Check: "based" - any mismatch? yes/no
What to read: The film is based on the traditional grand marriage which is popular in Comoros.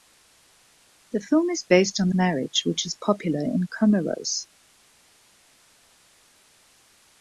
no